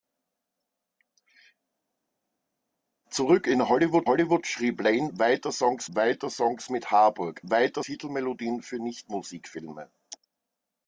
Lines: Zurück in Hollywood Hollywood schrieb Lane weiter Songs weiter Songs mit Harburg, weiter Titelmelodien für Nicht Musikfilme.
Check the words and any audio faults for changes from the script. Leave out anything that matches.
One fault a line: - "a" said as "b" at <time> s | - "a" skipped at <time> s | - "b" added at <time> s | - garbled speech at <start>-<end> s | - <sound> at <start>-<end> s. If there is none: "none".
none